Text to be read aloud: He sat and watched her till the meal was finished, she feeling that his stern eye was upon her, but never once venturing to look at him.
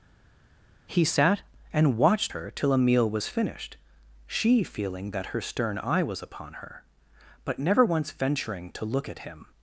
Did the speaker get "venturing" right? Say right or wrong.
right